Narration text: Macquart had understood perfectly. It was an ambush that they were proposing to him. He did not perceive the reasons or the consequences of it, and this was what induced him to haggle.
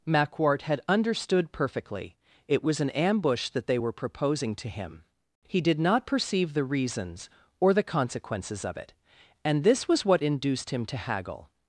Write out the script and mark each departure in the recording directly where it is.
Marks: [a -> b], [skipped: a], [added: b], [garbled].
Macquart had understood perfectly. It was an ambush that they were proposing to him. He did not perceive the reasons or the consequences of it, and this was what induced him to haggle.